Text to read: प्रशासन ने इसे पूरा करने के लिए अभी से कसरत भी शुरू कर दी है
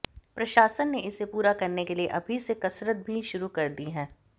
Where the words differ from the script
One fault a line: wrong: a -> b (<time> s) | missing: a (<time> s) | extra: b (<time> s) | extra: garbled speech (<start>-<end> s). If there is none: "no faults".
no faults